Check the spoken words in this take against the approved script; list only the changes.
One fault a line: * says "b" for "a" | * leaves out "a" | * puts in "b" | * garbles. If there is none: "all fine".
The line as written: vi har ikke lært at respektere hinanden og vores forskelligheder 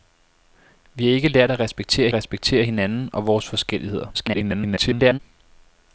* puts in "respektere"
* garbles